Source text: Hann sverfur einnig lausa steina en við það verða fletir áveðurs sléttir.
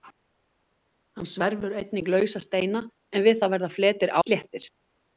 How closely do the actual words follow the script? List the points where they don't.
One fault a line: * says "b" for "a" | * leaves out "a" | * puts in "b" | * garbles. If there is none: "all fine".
* leaves out "áveðurs"